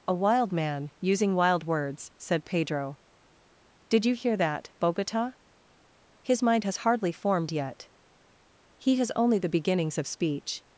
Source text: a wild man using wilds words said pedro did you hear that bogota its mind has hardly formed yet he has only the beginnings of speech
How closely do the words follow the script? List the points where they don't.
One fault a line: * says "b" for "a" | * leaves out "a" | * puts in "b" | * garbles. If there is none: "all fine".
* says "wild" for "wilds"
* says "his" for "its"